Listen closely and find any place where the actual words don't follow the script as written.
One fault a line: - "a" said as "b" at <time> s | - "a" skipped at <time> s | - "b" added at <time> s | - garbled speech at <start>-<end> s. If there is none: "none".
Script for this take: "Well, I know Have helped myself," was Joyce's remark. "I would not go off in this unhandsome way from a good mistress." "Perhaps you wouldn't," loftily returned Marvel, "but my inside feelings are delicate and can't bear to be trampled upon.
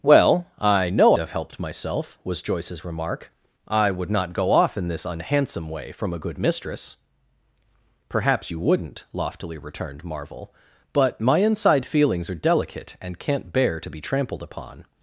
none